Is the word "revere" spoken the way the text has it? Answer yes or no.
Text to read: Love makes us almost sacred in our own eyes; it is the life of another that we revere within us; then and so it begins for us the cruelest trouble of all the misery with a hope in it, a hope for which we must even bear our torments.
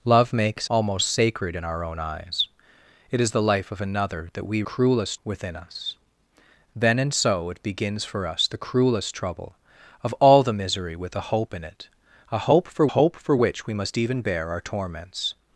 no